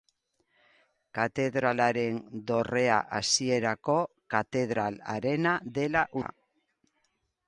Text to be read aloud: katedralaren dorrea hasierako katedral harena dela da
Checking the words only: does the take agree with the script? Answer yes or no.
yes